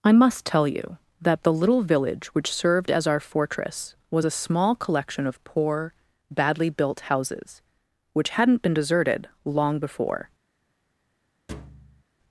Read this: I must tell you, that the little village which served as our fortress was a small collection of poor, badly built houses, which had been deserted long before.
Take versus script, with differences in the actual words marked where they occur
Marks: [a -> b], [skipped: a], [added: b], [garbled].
I must tell you, that the little village which served as our fortress was a small collection of poor, badly built houses, which [had -> hadn't] been deserted long before.